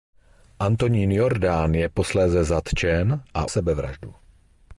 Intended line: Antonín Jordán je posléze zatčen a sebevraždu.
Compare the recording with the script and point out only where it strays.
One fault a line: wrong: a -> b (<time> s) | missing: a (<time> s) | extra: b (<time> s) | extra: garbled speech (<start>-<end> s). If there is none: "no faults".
no faults